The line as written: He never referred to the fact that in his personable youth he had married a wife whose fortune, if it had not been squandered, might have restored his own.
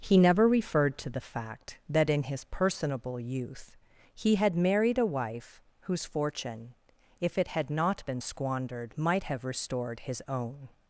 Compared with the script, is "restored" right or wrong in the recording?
right